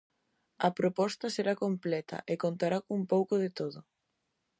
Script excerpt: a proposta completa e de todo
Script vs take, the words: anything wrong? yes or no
yes